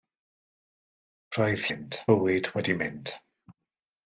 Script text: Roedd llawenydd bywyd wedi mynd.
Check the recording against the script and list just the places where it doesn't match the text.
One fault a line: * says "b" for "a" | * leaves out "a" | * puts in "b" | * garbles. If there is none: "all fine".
* says "mynd" for "llawenydd"